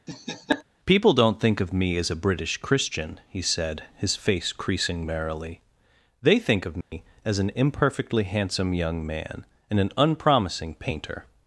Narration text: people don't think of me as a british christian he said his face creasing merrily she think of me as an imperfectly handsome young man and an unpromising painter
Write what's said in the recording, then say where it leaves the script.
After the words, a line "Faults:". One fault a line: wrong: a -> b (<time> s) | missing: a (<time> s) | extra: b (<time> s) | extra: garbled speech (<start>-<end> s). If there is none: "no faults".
people don't think of me as a british christian he said his face creasing merrily they think of me as an imperfectly handsome young man and an unpromising painter
Faults:
wrong: she -> they (6.2 s)